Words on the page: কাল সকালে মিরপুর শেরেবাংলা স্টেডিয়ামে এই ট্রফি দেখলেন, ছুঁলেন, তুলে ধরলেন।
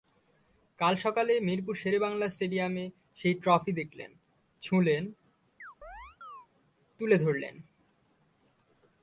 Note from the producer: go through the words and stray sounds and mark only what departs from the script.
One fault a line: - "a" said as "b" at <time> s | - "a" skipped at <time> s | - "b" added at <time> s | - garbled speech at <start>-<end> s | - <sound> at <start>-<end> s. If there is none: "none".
- "এই" said as "সেই" at 3.1 s
- chirp at 5.6-6.5 s